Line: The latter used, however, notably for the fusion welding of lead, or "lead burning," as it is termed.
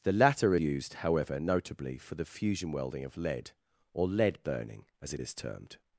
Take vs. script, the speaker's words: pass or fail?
pass